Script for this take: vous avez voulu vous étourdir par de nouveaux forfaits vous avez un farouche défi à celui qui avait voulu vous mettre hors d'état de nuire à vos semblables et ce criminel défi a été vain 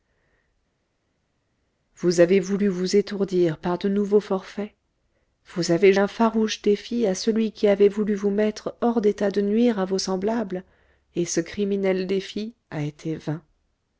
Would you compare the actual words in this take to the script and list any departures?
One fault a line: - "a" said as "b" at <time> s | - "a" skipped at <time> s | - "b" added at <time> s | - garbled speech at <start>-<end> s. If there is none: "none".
none